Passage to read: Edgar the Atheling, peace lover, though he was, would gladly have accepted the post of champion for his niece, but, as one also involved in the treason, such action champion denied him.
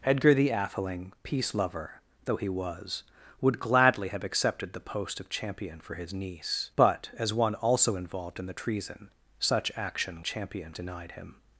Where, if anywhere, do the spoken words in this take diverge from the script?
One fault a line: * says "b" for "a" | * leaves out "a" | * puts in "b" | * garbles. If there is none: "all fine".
all fine